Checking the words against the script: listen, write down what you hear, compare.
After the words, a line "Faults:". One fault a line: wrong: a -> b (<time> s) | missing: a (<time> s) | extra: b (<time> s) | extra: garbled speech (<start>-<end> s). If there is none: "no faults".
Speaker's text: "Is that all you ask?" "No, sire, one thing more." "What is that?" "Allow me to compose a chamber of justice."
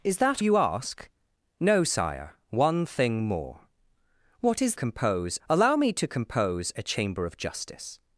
"Is that you ask?" "No, sire, one thing more." "What is compose?" "Allow me to compose a chamber of justice."
Faults:
missing: all (0.4 s)
wrong: that -> compose (4.7 s)